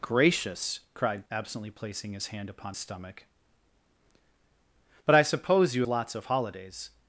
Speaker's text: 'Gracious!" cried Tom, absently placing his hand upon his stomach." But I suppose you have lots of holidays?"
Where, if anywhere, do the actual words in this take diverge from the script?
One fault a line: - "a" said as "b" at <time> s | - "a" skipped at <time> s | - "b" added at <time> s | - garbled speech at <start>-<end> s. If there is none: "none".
- "Tom" skipped at 1.2 s
- "his" skipped at 2.7 s
- "have" skipped at 5.8 s